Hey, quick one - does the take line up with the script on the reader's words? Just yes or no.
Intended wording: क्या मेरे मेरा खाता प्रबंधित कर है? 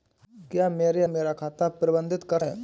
yes